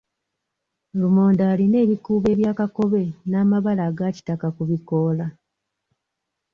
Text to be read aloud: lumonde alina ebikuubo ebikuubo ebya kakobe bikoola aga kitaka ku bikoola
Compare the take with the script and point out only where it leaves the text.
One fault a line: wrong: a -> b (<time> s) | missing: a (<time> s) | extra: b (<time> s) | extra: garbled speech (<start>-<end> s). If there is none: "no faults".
missing: ebikuubo (2.3 s)
wrong: bikoola -> n'amabala (3.3 s)